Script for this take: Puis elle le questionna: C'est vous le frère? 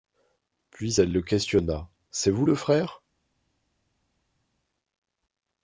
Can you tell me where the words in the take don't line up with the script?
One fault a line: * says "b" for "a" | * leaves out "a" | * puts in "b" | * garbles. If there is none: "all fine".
all fine